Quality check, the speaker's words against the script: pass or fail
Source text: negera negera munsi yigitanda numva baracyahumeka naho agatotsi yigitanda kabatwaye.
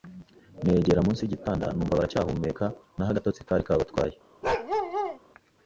fail